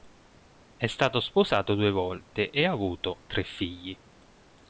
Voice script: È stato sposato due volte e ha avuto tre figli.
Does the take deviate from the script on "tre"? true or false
false